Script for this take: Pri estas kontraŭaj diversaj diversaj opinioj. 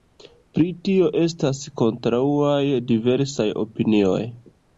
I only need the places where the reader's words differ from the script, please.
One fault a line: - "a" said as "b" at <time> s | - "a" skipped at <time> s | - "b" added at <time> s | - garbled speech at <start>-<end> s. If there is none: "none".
- "tio" added at 0.9 s
- "diversaj" skipped at 3.5 s